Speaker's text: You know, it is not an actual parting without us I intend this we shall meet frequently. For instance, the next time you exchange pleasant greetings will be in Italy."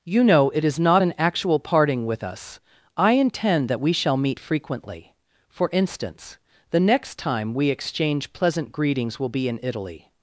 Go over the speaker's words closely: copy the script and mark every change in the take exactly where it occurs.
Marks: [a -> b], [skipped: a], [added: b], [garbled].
You know, it is not an actual parting [without -> with] us I intend [this -> that] we shall meet frequently. For instance, the next time [you -> we] exchange pleasant greetings will be in Italy."